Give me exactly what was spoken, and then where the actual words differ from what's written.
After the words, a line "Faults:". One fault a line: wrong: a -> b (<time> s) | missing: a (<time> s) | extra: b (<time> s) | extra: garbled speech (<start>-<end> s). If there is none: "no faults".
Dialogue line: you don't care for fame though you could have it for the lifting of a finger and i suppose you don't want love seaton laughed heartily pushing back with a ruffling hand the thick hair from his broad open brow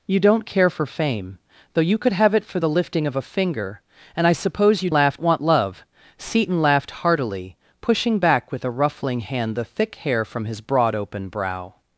you don't care for fame though you could have it for the lifting of a finger and i suppose you laughed want love seaton laughed heartily pushing back with a ruffling hand the thick hair from his broad open brow
Faults:
wrong: don't -> laughed (4.9 s)